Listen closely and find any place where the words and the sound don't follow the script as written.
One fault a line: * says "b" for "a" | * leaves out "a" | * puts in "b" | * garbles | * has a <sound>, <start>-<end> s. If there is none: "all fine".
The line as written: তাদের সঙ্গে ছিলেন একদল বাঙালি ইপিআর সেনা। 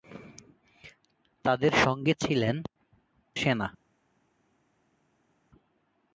* leaves out "একদল বাঙালি ইপিআর"